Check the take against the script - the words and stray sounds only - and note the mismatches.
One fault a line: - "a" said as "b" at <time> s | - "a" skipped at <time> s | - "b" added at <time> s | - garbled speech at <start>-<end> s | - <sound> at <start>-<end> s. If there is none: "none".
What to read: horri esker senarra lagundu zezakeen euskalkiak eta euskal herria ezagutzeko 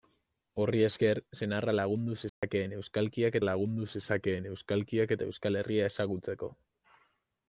- dropout at 2.3-2.4 s
- "lagundu zezakeen euskalkiak" added at 3.4 s